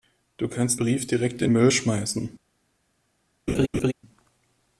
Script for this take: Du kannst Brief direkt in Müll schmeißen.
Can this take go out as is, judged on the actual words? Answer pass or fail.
pass